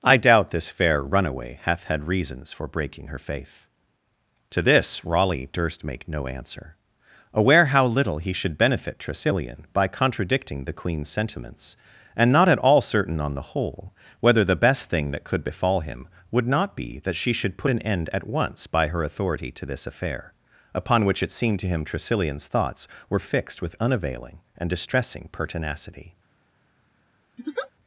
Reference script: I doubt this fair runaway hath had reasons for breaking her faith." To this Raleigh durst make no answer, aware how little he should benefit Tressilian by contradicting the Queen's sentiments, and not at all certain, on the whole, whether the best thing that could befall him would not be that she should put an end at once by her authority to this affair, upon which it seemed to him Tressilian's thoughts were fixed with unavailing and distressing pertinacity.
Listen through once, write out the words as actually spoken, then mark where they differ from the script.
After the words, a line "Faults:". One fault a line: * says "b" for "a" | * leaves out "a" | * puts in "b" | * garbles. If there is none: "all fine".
I doubt this fair runaway hath had reasons for breaking her faith." To this Raleigh durst make no answer, aware how little he should benefit Tressilian by contradicting the Queen's sentiments, and not at all certain, on the whole, whether the best thing that could befall him would not be that she should put an end at once by her authority to this affair, upon which it seemed to him Tressilian's thoughts were fixed with unavailing and distressing pertinacity.
Faults:
all fine